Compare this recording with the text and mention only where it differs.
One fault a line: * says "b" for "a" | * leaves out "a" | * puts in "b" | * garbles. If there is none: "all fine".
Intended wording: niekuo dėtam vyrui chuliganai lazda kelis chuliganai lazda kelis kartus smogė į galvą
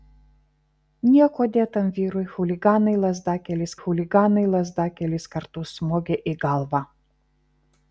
all fine